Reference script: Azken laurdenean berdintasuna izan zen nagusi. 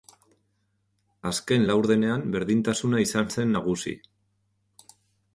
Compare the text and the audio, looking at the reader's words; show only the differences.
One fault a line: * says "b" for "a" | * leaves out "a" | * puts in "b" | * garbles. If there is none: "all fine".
all fine